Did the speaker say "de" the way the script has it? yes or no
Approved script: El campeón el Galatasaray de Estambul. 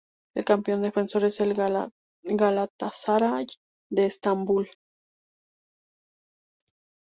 yes